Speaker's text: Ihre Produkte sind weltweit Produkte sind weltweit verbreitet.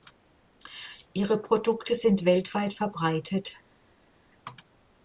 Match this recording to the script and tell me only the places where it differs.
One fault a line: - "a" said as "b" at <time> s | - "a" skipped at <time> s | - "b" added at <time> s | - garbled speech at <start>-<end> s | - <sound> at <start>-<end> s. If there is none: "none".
- "Produkte sind weltweit" skipped at 2.7 s